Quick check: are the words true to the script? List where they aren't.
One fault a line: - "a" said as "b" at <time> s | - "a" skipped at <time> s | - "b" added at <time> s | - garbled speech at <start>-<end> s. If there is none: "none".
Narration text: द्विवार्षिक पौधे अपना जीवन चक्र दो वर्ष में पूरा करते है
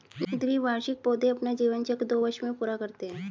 none